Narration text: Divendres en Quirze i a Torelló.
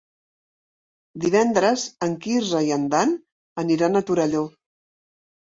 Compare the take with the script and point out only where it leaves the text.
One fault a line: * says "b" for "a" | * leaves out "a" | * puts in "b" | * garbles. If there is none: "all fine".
* puts in "en Dan aniran"